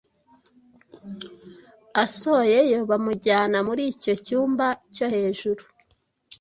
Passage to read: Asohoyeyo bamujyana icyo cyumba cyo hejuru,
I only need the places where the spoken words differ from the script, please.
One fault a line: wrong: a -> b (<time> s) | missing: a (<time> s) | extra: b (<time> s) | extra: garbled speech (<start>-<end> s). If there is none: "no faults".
extra: muri (3.7 s)